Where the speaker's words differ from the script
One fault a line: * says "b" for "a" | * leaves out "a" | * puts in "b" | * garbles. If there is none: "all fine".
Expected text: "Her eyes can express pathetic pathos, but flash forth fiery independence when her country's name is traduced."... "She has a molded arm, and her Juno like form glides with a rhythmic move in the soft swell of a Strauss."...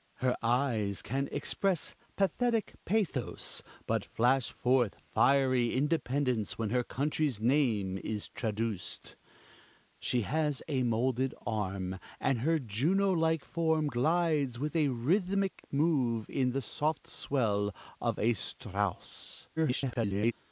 * garbles